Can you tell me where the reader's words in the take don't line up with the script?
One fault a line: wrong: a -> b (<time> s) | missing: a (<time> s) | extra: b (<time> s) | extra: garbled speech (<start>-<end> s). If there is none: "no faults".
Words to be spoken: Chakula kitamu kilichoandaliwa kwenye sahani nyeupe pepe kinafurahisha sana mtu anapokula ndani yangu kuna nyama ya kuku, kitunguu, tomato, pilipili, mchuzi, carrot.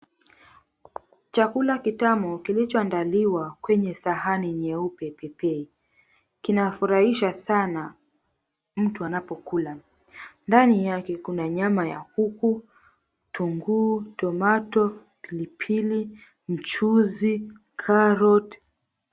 wrong: yangu -> yake (10.9 s)